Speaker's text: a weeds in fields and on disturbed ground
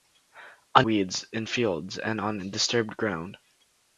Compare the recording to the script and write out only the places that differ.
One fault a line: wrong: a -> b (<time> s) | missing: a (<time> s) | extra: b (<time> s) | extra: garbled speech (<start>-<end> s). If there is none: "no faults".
no faults